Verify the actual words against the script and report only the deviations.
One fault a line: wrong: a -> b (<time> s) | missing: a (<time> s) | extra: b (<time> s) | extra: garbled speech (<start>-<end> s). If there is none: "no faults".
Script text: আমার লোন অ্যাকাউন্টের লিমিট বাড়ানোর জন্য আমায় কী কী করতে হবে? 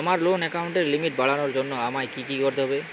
no faults